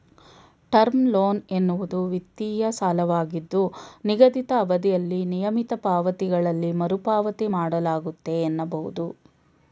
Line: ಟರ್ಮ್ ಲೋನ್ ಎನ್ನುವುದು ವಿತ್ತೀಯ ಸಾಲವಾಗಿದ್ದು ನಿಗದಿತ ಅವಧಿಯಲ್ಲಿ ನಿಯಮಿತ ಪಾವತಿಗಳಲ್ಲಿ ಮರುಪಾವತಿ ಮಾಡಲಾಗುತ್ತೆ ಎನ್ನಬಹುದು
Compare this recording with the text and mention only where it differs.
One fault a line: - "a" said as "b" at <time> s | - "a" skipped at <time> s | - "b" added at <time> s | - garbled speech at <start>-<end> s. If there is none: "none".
none